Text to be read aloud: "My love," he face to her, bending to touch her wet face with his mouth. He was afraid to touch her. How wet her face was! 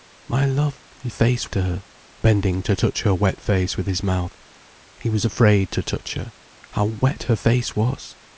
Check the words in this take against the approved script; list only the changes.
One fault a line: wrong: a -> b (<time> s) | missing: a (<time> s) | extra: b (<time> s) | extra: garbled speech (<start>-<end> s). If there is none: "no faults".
no faults